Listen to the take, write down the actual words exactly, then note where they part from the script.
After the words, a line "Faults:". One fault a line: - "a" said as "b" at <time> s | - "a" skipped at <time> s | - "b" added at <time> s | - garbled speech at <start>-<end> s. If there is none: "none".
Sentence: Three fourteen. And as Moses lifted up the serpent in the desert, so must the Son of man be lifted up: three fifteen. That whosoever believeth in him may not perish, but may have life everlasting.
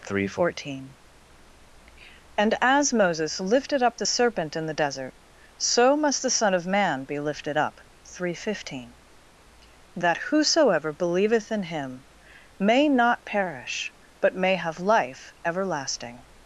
Three fourteen. And as Moses lifted up the serpent in the desert, so must the Son of man be lifted up: three fifteen. That whosoever believeth in him may not perish, but may have life everlasting.
Faults:
none